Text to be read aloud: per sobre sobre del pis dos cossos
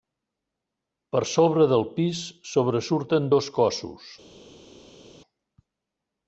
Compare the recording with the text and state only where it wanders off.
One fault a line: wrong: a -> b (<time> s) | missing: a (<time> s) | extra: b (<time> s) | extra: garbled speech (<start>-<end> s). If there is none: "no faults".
missing: sobre (1.7 s)
extra: sobresurten (2.5 s)